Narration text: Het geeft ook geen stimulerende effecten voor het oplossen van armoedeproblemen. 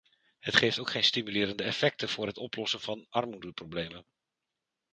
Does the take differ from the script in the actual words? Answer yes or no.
no